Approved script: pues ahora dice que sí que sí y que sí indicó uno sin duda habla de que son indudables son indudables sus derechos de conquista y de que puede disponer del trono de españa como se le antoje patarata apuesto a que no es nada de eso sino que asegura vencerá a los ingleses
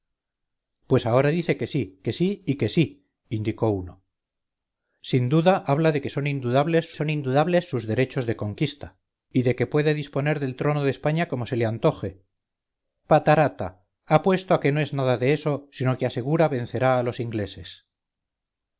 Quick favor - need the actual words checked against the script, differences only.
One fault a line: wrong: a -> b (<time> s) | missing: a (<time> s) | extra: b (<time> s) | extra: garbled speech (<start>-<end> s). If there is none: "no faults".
no faults